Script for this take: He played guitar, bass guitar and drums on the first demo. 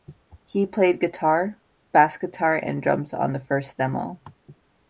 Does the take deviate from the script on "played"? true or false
false